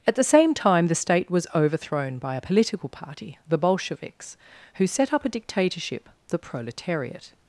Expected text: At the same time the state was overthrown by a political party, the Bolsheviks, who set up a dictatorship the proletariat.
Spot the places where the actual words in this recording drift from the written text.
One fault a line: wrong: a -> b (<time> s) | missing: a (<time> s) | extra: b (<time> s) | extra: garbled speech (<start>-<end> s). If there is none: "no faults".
no faults